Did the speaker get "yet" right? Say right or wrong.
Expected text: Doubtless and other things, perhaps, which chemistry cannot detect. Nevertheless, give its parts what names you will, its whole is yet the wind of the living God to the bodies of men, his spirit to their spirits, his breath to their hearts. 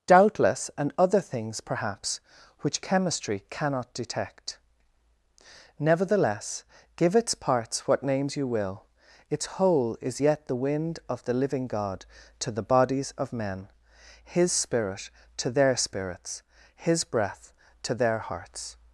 right